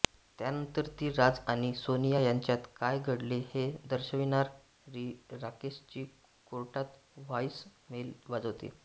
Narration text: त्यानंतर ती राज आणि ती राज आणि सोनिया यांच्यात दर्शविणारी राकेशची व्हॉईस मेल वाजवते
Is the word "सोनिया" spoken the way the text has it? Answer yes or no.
no